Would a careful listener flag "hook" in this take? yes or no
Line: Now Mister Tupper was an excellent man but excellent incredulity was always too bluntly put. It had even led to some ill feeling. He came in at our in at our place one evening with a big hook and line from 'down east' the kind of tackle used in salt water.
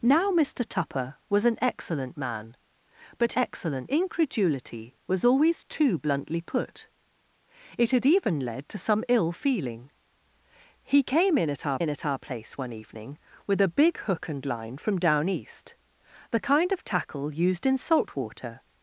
no